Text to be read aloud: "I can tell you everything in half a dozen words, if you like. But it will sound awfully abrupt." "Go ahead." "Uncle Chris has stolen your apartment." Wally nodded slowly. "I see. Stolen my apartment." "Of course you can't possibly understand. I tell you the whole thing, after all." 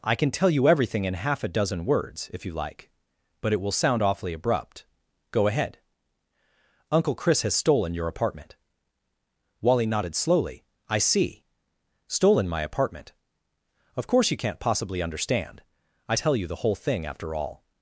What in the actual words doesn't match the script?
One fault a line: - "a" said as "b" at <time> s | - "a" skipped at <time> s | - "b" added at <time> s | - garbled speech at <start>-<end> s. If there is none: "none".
none